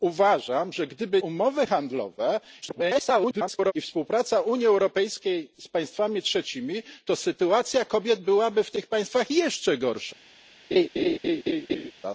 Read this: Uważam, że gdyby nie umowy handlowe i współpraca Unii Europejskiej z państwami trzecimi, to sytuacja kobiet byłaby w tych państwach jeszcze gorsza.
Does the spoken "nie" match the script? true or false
false